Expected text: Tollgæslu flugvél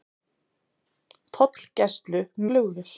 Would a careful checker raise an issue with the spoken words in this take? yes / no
no